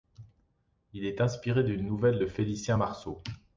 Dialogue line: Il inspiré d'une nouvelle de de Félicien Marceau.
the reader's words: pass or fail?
fail